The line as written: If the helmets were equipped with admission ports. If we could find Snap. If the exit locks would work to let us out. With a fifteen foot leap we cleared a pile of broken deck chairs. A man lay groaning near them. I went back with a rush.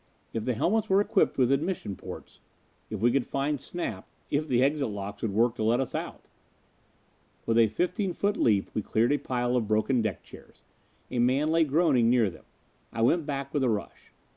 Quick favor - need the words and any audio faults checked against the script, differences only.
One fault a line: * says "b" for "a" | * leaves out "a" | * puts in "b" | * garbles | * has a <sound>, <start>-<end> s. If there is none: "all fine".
all fine